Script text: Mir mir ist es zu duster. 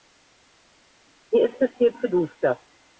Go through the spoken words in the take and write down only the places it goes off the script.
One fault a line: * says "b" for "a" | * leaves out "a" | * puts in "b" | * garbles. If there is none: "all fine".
* leaves out "mir"
* puts in "hier"